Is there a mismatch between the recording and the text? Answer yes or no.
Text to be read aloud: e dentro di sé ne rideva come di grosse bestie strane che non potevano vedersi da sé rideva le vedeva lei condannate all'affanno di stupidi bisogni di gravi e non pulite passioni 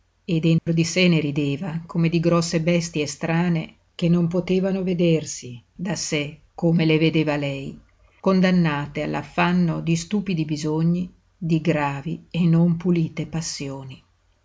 yes